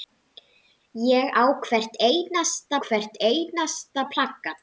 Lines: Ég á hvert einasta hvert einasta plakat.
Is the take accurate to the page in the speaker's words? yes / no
yes